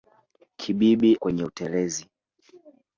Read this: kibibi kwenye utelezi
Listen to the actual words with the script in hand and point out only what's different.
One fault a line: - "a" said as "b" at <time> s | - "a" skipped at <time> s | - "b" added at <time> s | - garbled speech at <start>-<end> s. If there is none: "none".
none